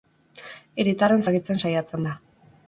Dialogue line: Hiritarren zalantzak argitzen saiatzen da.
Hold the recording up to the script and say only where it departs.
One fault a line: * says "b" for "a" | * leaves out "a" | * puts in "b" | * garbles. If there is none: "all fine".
* leaves out "zalantzak"